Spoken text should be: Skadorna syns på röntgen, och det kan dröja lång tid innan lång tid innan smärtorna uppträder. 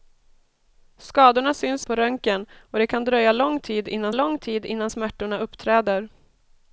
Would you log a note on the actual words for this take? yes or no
no